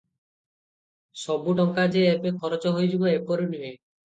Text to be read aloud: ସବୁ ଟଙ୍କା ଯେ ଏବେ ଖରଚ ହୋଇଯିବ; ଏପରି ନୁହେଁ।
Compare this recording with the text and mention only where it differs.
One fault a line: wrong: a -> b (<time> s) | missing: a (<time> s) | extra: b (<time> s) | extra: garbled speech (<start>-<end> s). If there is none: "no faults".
no faults